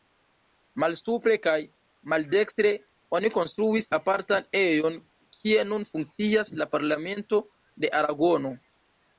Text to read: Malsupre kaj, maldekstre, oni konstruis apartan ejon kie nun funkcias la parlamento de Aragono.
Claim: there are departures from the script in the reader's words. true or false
false